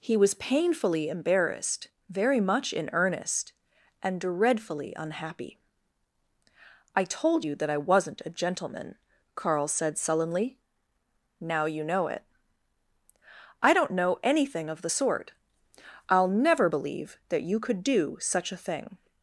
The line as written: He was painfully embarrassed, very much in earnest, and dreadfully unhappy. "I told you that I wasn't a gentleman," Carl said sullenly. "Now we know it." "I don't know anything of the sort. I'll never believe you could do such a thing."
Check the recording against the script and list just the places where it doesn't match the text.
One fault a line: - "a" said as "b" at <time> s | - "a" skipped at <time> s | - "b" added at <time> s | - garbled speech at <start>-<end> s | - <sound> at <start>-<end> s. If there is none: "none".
- "we" said as "you" at 11.6 s
- "that" added at 17.3 s